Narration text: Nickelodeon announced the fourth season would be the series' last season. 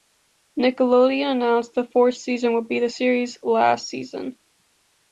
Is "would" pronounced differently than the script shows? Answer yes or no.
no